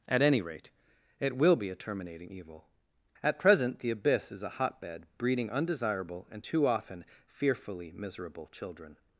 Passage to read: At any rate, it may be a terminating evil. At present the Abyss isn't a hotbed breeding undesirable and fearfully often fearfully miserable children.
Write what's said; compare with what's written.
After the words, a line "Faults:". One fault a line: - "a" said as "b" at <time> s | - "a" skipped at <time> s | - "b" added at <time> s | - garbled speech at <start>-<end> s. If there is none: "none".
At any rate, it will be a terminating evil. At present the Abyss is a hotbed breeding undesirable and too often fearfully miserable children.
Faults:
- "may" said as "will" at 1.4 s
- "isn't" said as "is" at 4.3 s
- "fearfully" said as "too" at 6.4 s